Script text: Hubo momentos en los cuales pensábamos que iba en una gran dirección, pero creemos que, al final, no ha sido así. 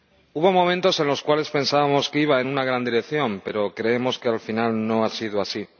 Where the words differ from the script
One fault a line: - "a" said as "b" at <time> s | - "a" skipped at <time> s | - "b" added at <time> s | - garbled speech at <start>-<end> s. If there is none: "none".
none